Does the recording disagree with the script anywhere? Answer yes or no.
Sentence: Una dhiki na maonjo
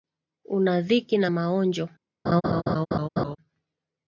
no